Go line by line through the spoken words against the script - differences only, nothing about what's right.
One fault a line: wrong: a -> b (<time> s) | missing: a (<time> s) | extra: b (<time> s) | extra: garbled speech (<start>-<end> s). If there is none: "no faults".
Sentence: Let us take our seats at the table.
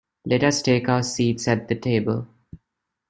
no faults